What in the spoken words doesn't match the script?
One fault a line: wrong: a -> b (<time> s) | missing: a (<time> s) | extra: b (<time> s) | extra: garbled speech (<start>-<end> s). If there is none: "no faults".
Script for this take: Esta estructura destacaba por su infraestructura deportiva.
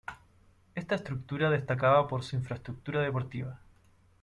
no faults